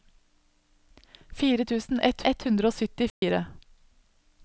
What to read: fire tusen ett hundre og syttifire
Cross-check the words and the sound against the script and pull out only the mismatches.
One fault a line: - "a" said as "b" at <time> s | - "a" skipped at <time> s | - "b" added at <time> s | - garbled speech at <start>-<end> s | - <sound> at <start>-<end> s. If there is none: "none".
- "ett" added at 2.3 s
- dropout at 3.1-3.2 s